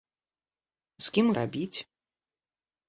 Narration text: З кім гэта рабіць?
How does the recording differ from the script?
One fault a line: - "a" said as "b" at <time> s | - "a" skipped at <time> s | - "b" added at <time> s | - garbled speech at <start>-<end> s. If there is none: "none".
- "гэта" skipped at 1.3 s